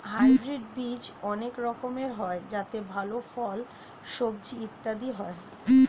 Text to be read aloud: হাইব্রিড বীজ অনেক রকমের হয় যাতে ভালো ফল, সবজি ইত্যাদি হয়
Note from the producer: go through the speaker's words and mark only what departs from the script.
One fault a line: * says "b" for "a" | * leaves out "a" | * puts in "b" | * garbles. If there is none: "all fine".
all fine